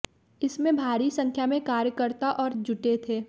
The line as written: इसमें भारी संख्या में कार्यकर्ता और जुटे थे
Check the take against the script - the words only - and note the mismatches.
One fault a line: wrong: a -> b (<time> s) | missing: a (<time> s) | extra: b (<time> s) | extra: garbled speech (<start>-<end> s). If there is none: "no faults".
no faults